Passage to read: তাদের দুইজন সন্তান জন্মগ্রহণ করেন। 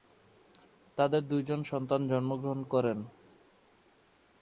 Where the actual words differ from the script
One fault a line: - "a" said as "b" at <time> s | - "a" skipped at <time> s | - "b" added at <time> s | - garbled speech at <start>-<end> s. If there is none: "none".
none